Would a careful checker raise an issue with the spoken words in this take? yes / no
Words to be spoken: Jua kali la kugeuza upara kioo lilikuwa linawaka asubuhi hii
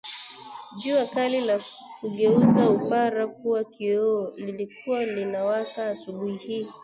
yes